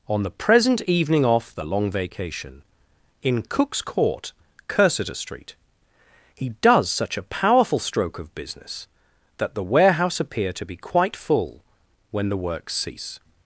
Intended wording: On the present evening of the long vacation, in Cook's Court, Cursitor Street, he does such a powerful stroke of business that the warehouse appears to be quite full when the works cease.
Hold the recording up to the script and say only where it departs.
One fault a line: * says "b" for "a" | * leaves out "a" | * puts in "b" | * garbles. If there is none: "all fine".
* says "off" for "of"
* says "appear" for "appears"